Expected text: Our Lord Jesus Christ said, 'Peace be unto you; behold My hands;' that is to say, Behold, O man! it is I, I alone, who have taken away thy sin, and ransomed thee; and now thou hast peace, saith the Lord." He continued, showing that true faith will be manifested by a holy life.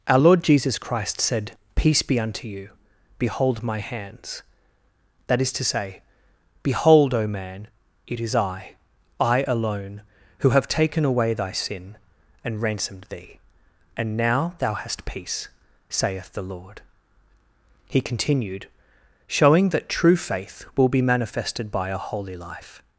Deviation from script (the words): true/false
false